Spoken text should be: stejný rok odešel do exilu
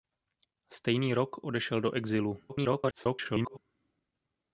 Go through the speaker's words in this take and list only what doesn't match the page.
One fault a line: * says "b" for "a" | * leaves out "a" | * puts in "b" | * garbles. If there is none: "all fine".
* garbles